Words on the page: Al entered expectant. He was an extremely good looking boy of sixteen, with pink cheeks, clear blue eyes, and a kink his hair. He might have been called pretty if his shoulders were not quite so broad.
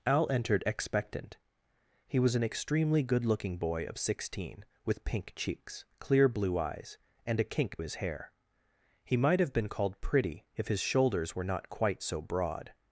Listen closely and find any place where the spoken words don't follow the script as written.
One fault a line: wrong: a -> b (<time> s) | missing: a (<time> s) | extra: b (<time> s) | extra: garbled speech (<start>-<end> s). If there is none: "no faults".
no faults